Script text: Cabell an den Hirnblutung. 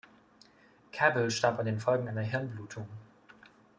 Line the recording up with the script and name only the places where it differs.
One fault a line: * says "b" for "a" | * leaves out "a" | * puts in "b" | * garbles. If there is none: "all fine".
* puts in "starb"
* puts in "Folgen einer"